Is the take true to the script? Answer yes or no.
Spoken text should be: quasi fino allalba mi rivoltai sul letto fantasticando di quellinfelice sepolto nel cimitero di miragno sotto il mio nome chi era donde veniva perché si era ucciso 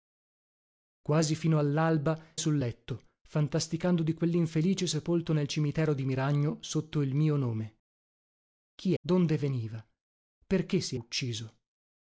no